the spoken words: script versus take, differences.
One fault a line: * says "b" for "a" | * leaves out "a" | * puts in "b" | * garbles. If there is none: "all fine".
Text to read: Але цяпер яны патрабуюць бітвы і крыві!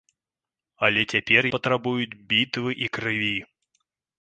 * leaves out "яны"